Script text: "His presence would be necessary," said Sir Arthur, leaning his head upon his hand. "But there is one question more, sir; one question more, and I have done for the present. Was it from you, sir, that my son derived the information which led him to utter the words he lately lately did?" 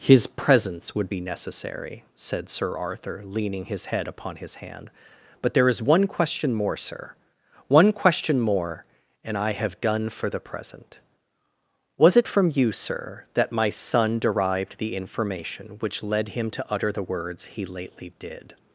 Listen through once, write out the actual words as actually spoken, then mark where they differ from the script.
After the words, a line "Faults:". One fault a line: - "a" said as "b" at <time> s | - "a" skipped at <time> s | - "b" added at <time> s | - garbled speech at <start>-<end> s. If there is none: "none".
"His presence would be necessary," said Sir Arthur, leaning his head upon his hand. "But there is one question more, sir; one question more, and I have done for the present. Was it from you, sir, that my son derived the information which led him to utter the words he lately did?"
Faults:
- "lately" skipped at 18.1 s